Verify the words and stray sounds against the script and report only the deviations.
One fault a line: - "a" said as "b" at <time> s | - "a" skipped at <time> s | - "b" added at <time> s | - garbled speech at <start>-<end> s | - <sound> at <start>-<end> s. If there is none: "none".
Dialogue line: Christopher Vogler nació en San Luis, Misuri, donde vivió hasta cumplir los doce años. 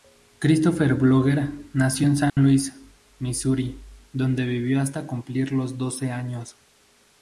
- dropout at 2.3-2.4 s